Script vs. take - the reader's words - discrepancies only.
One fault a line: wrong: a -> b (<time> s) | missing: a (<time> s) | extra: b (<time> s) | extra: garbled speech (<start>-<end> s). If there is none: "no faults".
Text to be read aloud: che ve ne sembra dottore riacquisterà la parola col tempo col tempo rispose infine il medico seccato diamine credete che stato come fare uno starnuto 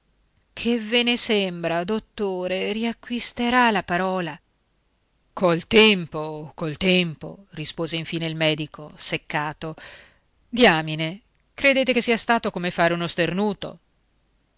extra: sia (12.0 s)